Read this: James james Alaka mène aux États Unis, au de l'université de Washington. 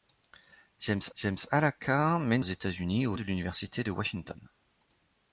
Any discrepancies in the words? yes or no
no